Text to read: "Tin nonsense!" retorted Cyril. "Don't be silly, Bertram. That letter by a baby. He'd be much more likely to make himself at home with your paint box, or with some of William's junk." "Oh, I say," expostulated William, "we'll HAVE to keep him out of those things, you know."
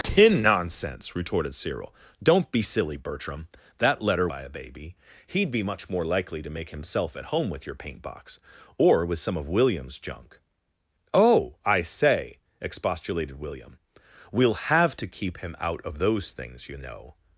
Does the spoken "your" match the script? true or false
true